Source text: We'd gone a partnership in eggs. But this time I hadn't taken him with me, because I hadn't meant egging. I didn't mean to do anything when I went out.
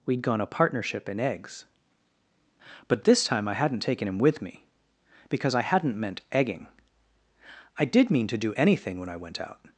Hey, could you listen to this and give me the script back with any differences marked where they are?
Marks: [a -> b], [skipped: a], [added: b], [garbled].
We'd gone a partnership in eggs. But this time I hadn't taken him with me, because I hadn't meant egging. I [didn't -> did] mean to do anything when I went out.